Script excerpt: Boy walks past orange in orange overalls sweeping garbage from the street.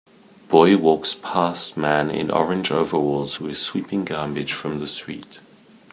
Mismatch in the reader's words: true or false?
true